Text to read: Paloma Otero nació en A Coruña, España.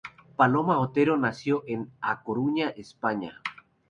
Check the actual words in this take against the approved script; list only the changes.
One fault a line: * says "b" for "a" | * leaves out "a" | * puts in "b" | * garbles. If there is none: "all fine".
all fine